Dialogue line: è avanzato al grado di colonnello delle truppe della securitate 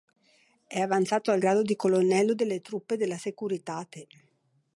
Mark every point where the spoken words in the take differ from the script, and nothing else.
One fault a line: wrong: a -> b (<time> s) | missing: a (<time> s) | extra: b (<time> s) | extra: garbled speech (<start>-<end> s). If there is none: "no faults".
no faults